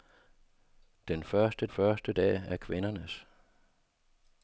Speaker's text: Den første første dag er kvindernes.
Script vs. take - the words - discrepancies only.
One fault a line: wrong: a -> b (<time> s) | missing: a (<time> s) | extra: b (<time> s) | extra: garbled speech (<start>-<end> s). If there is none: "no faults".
no faults